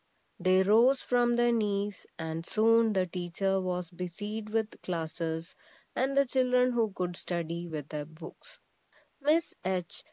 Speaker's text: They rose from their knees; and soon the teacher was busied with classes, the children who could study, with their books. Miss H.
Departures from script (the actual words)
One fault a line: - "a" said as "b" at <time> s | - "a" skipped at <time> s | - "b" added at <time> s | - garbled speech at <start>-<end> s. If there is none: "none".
- "and" added at 6.0 s